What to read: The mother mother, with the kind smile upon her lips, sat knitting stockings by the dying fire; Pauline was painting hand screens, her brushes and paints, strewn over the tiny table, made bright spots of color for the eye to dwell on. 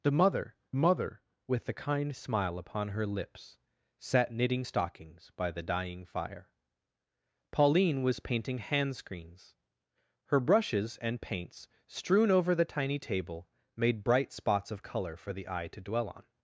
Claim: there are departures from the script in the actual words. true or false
false